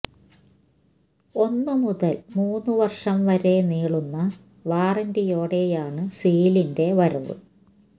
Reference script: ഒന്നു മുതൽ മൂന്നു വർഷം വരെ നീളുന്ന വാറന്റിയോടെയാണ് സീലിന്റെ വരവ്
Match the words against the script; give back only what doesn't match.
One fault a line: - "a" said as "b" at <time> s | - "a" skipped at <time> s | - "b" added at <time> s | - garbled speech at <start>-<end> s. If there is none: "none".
none